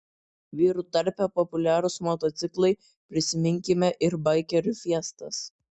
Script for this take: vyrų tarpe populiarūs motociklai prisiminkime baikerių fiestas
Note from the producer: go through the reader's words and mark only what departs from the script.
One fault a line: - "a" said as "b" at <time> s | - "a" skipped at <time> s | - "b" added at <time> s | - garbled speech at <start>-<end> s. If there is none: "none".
- "ir" added at 4.1 s